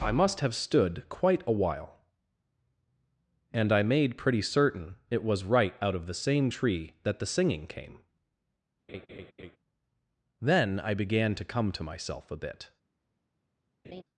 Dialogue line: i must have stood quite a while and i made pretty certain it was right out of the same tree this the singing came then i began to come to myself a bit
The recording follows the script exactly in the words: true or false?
false